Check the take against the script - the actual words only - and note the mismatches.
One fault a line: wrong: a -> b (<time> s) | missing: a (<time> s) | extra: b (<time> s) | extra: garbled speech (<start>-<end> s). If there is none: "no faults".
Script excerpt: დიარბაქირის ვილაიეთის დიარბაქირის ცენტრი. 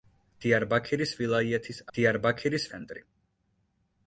no faults